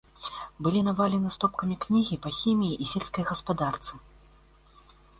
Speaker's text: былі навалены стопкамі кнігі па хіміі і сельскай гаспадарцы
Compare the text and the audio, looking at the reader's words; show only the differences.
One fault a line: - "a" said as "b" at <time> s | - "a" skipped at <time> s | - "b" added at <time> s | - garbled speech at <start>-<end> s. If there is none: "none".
none